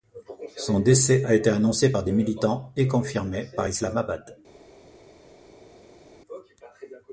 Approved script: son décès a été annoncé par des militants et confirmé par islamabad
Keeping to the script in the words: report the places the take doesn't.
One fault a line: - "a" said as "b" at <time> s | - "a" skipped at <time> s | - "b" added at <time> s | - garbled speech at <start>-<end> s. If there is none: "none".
none